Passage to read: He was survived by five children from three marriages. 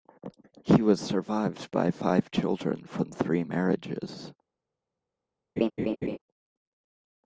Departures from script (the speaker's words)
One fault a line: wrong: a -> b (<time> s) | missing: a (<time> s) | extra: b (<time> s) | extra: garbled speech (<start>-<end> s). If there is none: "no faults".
no faults